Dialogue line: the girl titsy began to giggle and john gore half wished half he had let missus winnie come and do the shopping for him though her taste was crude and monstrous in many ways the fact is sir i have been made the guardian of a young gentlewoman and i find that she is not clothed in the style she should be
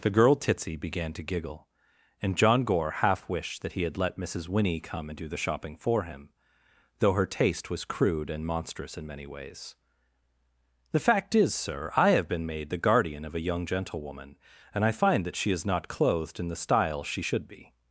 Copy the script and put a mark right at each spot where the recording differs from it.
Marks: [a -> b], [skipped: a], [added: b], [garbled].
the girl titsy began to giggle and john gore half wished [half -> that] he had let missus winnie come and do the shopping for him though her taste was crude and monstrous in many ways the fact is sir i have been made the guardian of a young gentlewoman and i find that she is not clothed in the style she should be